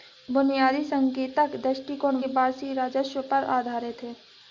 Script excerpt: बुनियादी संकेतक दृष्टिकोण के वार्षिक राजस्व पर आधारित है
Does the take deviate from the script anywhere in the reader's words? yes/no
no